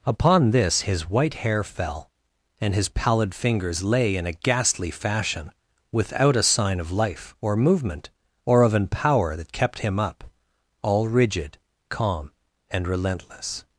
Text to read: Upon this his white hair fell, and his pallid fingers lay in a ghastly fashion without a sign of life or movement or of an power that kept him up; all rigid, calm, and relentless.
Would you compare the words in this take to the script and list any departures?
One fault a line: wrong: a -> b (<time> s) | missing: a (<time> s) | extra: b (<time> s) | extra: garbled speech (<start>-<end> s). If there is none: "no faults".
no faults